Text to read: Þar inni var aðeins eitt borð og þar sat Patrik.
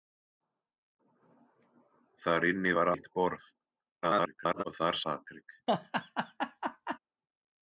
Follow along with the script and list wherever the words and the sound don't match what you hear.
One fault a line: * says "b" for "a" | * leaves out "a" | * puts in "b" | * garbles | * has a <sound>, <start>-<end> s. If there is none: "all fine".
* leaves out "aðeins"
* garbles
* leaves out "sat"
* has a laugh, 5.7-7.0 s